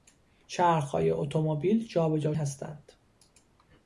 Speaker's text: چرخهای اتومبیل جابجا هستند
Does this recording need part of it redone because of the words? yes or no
no